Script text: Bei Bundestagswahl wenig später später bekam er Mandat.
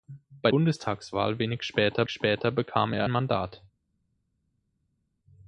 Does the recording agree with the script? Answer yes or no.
yes